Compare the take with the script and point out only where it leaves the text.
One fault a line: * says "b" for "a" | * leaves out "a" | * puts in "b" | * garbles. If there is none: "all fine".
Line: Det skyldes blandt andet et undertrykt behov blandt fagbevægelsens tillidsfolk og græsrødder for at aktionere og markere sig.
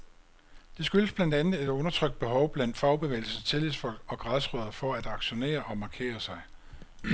all fine